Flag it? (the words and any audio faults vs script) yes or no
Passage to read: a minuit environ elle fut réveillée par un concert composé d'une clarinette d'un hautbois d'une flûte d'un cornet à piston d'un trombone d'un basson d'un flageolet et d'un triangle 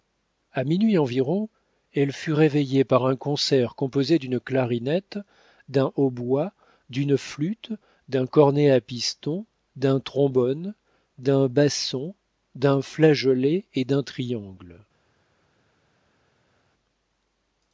no